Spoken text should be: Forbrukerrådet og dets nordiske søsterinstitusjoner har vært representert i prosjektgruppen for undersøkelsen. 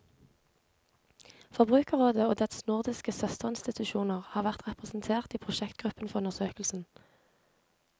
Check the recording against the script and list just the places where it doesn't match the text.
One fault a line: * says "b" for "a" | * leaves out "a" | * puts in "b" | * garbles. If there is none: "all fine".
all fine